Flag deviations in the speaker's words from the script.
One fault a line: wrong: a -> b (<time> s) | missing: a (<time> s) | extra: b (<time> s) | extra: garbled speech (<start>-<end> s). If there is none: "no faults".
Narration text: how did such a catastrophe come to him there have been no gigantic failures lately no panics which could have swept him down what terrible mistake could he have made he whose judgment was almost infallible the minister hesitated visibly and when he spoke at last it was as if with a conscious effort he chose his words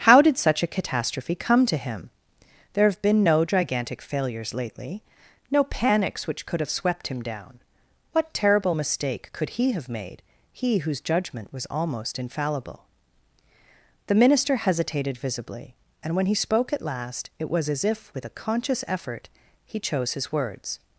no faults